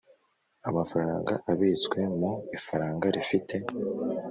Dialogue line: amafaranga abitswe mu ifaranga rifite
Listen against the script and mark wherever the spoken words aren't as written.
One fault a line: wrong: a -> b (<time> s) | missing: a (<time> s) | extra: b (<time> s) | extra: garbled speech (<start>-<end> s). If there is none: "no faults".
no faults